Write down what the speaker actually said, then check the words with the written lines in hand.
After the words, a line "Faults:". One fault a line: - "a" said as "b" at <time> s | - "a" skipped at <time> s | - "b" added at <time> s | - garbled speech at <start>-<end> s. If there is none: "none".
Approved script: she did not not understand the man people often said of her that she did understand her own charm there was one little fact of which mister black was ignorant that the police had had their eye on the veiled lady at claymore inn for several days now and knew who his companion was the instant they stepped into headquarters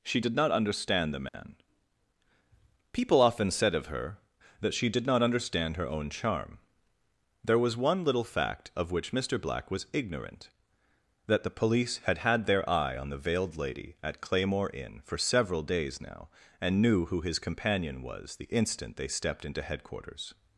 she did not understand the man people often said of her that she did not understand her own charm there was one little fact of which mister black was ignorant that the police had had their eye on the veiled lady at claymore inn for several days now and knew who his companion was the instant they stepped into headquarters
Faults:
- "not" skipped at 0.5 s
- "not" added at 5.1 s